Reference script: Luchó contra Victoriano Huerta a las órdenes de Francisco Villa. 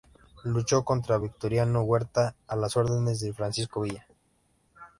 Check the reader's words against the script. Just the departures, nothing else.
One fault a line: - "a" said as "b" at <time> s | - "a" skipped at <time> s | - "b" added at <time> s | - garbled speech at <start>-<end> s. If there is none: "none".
none